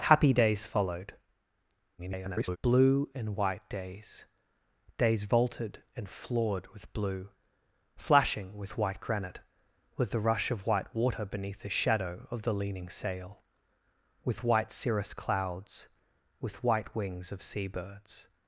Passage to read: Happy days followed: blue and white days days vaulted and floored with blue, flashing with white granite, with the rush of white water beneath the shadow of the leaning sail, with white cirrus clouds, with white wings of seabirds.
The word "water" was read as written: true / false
true